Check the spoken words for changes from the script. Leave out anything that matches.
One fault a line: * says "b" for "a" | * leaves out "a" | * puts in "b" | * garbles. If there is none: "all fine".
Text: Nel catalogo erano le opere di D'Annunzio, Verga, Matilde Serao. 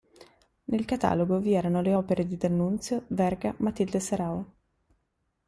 * puts in "vi"